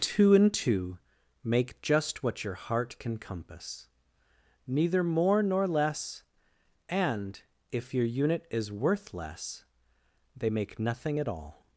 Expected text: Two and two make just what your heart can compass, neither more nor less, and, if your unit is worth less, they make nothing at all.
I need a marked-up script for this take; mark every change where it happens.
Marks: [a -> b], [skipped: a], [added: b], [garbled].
Two and two make just what your heart can compass, neither more nor less, and, if your unit is worth less, they make nothing at all.